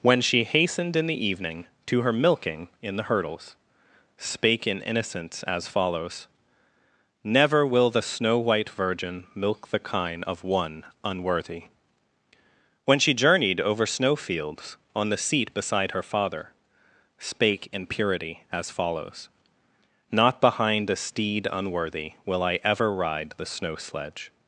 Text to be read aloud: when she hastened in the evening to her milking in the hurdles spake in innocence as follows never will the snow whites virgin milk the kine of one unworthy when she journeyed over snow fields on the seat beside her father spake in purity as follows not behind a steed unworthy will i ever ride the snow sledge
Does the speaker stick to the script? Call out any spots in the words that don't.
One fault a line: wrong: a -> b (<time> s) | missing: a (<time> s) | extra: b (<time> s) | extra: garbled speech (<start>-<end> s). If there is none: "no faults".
wrong: whites -> white (8.4 s)